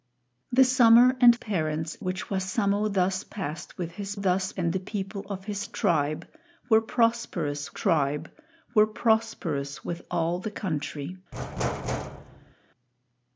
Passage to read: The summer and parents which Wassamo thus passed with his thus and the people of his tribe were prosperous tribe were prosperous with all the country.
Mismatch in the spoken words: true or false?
false